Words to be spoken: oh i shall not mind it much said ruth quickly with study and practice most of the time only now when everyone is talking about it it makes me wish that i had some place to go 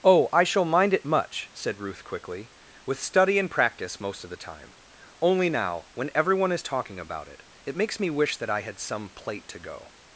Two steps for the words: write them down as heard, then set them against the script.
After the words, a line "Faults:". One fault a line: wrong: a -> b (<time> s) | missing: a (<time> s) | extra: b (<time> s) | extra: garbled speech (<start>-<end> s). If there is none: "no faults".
oh i shall mind it much said ruth quickly with study and practice most of the time only now when everyone is talking about it it makes me wish that i had some plate to go
Faults:
missing: not (0.7 s)
wrong: place -> plate (9.1 s)